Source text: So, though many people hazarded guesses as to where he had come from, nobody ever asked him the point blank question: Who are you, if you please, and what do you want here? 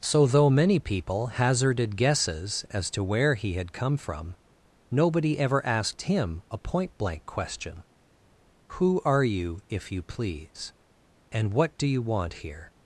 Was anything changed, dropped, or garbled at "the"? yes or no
yes